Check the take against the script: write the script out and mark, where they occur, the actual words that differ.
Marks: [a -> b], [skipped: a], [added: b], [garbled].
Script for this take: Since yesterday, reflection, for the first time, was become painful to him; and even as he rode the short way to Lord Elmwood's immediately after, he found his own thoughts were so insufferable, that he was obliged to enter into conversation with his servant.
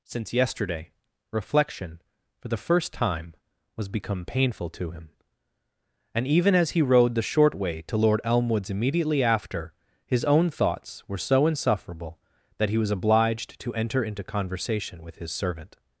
Since yesterday, reflection, for the first time, was become painful to him; and even as he rode the short way to Lord Elmwood's immediately after, [skipped: he found] his own thoughts were so insufferable, that he was obliged to enter into conversation with his servant.